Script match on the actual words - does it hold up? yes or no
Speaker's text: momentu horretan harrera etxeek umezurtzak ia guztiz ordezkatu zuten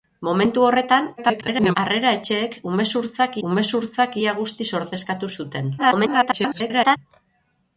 no